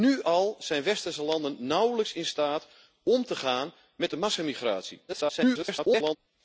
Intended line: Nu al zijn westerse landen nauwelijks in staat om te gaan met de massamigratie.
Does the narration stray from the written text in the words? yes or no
yes